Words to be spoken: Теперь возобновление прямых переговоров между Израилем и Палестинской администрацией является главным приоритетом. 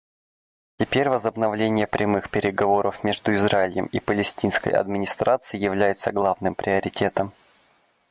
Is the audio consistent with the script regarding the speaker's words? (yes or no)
yes